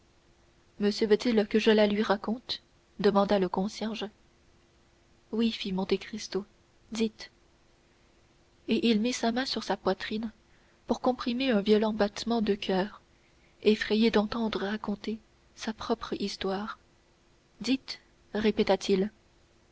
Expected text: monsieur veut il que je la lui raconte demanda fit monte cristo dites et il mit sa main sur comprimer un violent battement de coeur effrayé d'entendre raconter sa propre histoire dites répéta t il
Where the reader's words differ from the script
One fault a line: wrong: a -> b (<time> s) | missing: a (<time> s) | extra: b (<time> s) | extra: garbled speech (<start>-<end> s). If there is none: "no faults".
extra: le concierge oui (3.4 s)
extra: sa poitrine pour (9.6 s)